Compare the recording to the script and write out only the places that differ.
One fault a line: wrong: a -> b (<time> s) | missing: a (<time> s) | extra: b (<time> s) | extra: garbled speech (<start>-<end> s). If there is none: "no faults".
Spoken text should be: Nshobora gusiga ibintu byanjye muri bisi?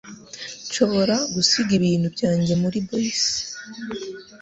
no faults